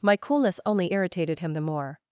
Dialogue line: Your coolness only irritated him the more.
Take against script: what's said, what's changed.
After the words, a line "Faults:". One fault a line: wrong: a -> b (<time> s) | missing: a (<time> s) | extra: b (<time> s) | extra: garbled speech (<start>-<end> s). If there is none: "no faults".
My coolness only irritated him the more.
Faults:
wrong: Your -> My (0.0 s)